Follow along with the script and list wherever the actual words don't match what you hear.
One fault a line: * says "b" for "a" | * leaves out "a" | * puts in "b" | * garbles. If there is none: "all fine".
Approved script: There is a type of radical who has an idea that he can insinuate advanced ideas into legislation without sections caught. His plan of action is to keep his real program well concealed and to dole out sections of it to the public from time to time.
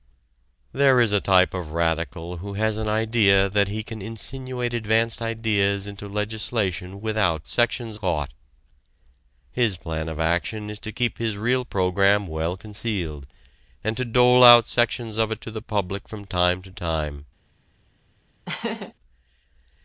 all fine